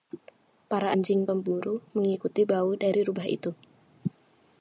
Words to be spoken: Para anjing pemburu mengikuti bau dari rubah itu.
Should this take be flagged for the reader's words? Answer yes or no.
no